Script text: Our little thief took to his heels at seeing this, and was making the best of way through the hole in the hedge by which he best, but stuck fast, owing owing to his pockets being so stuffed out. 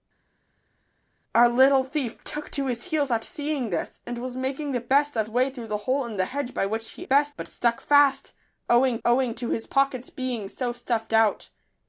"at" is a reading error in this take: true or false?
false